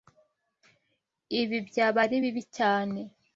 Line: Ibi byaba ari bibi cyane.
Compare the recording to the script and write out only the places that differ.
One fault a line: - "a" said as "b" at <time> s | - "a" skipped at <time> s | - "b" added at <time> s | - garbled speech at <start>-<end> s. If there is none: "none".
none